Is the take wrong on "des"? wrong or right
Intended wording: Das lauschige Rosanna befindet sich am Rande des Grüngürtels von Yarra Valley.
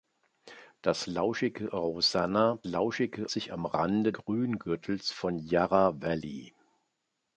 wrong